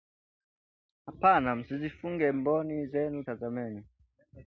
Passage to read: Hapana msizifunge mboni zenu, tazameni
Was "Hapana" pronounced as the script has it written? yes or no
yes